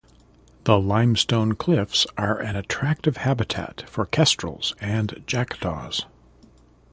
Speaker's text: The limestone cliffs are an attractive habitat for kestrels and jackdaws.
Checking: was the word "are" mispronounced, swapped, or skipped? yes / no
no